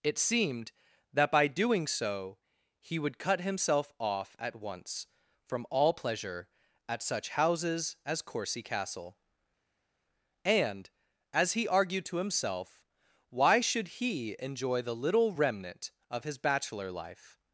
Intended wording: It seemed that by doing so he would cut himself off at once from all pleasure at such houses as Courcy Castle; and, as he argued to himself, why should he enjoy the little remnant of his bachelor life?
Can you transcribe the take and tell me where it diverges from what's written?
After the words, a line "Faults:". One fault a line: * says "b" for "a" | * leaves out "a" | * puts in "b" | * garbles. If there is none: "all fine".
It seemed that by doing so he would cut himself off at once from all pleasure at such houses as Courcy Castle; and, as he argued to himself, why should he enjoy the little remnant of his bachelor life?
Faults:
all fine